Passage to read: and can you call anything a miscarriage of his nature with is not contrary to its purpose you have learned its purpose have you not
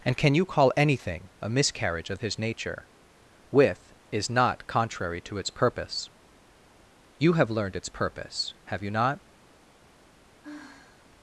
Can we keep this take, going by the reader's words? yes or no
yes